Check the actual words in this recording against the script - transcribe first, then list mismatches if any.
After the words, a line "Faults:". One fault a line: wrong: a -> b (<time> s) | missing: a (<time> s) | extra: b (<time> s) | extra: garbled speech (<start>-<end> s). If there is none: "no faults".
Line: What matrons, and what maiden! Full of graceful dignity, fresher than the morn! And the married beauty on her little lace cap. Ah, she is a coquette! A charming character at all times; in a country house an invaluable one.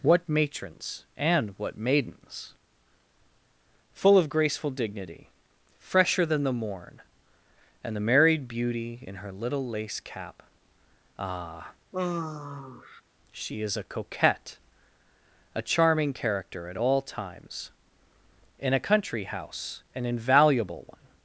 What matrons, and what maidens! Full of graceful dignity, fresher than the morn! And the married beauty in her little lace cap. Ah, she is a coquette! A charming character at all times; in a country house an invaluable one.
Faults:
wrong: maiden -> maidens (1.8 s)
wrong: on -> in (9.0 s)